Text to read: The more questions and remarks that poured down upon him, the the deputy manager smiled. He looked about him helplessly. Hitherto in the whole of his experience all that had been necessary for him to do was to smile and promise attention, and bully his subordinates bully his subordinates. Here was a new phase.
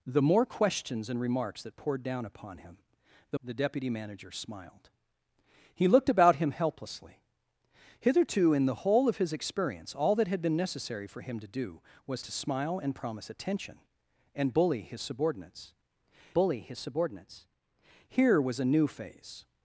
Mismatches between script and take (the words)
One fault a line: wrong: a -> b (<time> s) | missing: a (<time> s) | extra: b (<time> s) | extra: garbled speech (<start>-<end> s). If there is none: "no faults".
no faults